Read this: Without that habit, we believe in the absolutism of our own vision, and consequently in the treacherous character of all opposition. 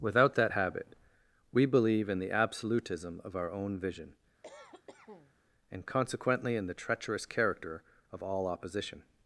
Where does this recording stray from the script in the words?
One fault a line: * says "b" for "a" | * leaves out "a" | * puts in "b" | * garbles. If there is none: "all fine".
all fine